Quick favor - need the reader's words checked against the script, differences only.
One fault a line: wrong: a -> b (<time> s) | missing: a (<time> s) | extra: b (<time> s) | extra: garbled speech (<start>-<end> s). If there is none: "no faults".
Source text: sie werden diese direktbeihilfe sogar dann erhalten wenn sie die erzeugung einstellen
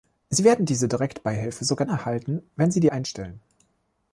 missing: dann (1.9 s)
missing: erzeugung (2.9 s)